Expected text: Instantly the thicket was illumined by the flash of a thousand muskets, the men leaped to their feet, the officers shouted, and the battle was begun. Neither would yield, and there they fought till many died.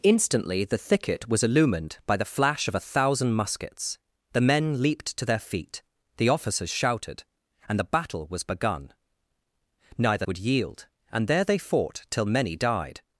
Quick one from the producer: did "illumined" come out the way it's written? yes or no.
yes